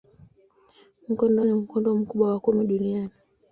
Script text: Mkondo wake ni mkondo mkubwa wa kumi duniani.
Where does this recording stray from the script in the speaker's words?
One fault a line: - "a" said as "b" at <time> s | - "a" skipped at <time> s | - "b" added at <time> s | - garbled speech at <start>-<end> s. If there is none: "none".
- "wake" skipped at 1.4 s